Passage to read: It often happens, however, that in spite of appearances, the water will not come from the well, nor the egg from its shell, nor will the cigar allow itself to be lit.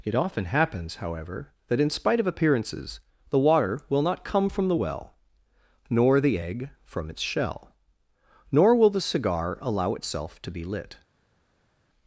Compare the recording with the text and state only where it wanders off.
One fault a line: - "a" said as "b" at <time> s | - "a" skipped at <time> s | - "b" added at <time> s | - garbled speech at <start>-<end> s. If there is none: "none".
none